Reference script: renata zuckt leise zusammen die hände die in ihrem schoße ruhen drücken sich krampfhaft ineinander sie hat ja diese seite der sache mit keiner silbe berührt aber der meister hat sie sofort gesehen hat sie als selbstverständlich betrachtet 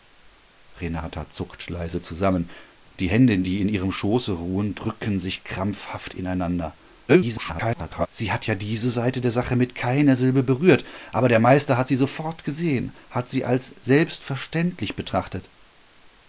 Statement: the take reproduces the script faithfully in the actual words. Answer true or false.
false